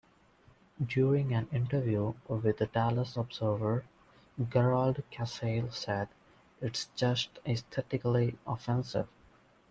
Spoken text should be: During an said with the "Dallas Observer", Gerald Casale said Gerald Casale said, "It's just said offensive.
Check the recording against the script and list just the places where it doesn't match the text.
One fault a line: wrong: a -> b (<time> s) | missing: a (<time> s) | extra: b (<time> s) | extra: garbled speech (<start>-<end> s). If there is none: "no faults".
wrong: said -> interview (1.5 s)
missing: Gerald Casale said (6.1 s)
wrong: said -> aesthetically (7.4 s)